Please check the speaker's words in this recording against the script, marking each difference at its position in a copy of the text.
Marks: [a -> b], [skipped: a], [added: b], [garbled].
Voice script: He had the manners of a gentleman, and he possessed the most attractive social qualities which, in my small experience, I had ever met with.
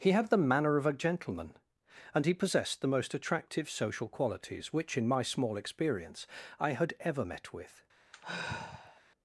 He had the [manners -> manner] of a gentleman, and he possessed the most attractive social qualities which, in my small experience, I had ever met with.